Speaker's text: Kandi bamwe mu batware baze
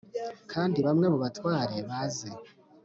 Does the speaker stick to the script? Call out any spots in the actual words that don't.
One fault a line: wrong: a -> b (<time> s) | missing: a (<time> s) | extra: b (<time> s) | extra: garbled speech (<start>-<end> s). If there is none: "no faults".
no faults